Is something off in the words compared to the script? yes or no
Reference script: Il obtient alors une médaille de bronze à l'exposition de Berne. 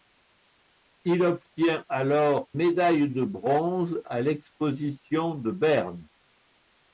yes